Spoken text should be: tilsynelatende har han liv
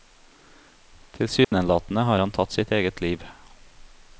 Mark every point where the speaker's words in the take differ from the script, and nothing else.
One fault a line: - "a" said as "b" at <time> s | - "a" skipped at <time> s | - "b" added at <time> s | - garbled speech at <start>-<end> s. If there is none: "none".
- "tatt sitt eget" added at 2.3 s